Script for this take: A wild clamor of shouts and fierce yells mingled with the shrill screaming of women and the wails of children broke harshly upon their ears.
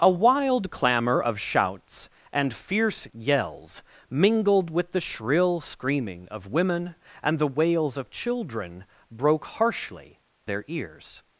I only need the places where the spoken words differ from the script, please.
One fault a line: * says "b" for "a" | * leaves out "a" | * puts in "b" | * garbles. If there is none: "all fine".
* leaves out "upon"